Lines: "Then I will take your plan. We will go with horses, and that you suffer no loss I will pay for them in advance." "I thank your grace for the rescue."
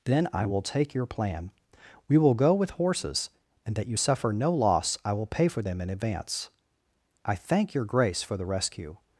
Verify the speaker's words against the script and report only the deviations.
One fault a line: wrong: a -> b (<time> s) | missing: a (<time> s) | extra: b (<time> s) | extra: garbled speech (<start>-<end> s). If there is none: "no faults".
no faults